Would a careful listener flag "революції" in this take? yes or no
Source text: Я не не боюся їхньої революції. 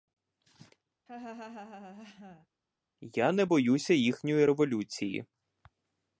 no